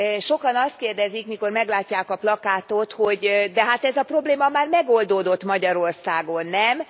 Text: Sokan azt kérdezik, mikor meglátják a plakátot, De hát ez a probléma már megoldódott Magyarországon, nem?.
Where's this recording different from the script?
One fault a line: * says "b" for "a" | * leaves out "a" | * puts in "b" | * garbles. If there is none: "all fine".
* puts in "hogy"